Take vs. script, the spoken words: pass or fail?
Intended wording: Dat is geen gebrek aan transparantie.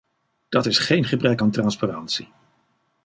pass